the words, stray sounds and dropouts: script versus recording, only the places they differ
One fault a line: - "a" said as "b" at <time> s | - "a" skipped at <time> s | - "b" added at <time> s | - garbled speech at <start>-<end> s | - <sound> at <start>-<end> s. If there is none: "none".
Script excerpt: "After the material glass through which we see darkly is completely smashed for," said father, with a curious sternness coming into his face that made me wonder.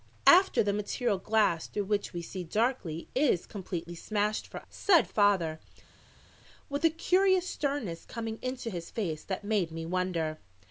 none